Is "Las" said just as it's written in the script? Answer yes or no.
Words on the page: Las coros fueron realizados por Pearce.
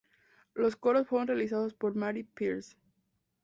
no